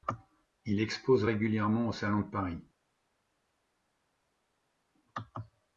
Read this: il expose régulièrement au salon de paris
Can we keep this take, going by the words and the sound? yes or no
yes